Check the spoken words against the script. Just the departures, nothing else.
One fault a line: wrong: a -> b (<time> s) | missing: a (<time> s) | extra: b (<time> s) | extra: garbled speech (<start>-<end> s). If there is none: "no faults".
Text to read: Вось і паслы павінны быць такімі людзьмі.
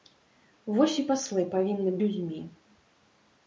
missing: быць такімі (1.9 s)